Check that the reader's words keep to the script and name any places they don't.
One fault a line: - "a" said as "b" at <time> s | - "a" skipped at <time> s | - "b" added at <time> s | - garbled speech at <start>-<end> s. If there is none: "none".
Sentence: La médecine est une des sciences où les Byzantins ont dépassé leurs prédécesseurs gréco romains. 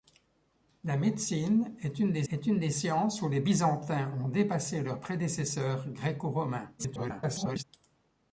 - "est une des" added at 2.3 s
- garbled speech at 6.8-7.6 s